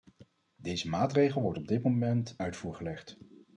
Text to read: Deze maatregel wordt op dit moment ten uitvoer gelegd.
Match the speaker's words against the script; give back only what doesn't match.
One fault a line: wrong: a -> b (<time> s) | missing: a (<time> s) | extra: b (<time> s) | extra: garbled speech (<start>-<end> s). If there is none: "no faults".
missing: ten (2.4 s)